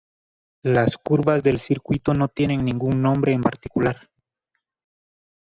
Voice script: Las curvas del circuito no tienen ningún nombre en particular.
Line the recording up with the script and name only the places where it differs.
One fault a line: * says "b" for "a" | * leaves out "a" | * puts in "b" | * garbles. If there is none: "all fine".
all fine